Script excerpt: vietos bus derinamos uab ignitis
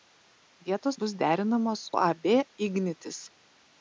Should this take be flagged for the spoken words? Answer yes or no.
no